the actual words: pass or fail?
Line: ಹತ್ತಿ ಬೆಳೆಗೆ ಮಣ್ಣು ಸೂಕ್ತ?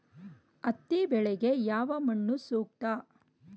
fail